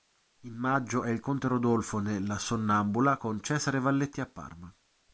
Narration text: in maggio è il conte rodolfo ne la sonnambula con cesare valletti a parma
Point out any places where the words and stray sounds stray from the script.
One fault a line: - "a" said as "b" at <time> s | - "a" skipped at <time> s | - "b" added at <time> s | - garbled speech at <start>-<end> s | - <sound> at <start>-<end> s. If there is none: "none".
none